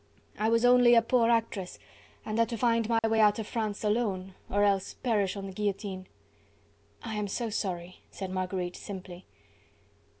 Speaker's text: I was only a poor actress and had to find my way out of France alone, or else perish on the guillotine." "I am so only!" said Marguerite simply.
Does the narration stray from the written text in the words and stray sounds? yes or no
yes